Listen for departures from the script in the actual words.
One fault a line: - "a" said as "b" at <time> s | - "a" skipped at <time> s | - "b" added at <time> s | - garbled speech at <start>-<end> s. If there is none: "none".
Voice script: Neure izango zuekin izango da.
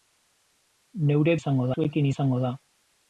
none